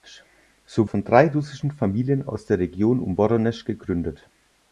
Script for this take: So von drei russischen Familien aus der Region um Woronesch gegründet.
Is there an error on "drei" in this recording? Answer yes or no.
no